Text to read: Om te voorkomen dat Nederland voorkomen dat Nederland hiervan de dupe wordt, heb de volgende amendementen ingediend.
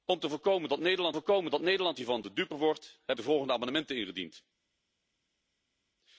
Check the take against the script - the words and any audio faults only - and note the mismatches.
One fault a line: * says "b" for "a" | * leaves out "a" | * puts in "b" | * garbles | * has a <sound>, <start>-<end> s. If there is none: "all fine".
all fine